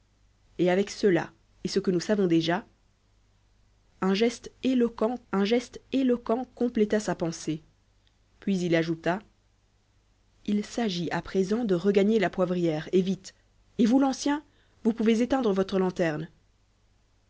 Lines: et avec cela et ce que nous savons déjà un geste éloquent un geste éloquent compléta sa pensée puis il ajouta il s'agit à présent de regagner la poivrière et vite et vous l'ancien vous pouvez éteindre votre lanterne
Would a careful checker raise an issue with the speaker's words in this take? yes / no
no